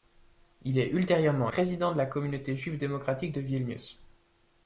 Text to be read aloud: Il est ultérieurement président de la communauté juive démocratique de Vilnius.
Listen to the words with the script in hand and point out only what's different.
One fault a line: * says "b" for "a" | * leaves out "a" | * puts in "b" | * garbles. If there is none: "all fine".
all fine